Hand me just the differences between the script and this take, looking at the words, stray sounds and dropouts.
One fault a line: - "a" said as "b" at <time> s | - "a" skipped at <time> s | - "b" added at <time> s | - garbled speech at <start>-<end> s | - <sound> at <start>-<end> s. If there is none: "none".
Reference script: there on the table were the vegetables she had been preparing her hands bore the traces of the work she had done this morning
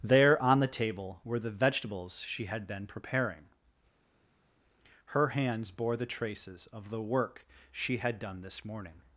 none